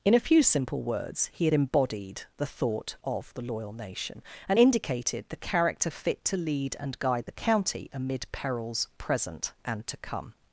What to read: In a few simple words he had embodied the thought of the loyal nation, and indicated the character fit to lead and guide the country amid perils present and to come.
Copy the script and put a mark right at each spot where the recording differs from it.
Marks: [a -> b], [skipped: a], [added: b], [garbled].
In a few simple words he had embodied the thought of the loyal nation, and indicated the character fit to lead and guide the [country -> county] amid perils present and to come.